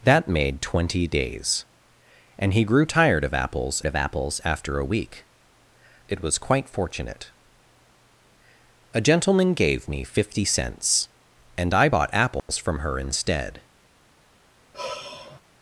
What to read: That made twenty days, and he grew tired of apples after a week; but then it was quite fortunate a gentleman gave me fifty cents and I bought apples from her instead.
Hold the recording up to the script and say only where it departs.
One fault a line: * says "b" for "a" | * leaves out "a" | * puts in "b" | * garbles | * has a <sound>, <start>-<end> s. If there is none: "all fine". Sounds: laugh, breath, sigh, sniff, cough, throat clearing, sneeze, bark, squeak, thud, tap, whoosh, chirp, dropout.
* puts in "of apples"
* leaves out "but then"
* has a dropout, 12.4-12.5 s
* has a sigh, 14.7-15.4 s